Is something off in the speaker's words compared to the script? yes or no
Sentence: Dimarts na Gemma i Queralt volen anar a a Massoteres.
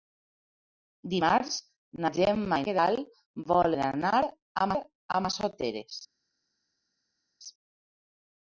no